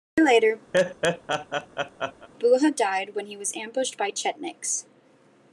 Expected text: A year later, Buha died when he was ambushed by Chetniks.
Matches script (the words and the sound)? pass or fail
fail